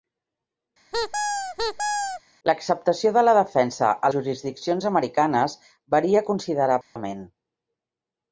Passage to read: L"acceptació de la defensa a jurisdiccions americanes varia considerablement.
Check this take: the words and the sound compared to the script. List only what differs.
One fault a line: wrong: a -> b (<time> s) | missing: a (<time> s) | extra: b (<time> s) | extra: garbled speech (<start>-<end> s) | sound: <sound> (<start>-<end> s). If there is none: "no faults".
sound: squeak (0.9-2.2 s)
sound: dropout (6.8-7.0 s)